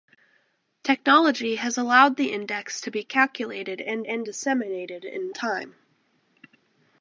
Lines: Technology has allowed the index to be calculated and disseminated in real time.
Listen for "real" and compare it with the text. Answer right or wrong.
wrong